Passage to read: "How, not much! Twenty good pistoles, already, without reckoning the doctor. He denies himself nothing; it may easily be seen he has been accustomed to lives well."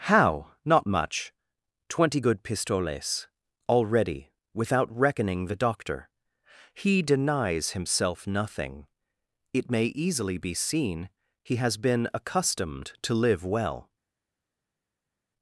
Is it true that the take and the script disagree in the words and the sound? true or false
true